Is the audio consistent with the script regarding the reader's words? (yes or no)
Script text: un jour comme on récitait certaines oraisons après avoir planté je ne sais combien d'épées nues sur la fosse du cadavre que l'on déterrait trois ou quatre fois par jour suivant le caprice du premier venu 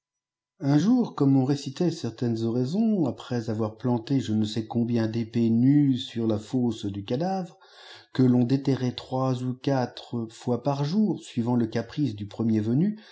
yes